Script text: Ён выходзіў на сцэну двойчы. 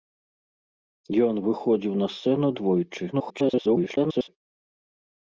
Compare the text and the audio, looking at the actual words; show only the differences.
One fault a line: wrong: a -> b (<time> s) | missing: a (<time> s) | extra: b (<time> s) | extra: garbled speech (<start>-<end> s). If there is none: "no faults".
extra: garbled speech (3.1-4.3 s)